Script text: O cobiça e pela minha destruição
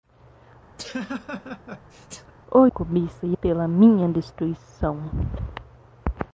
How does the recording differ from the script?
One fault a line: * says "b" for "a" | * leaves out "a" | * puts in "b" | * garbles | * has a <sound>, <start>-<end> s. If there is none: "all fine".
* has a laugh, 0.8-2.3 s